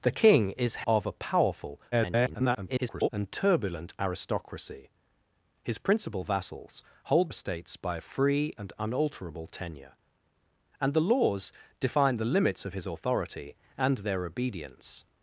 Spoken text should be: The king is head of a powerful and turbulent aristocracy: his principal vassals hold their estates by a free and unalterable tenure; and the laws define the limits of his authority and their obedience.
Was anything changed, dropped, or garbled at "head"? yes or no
yes